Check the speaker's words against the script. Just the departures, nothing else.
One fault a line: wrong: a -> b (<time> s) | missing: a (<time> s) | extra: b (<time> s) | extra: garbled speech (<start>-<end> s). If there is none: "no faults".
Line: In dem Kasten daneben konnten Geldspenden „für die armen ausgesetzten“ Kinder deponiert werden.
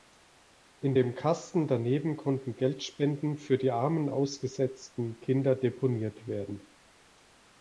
no faults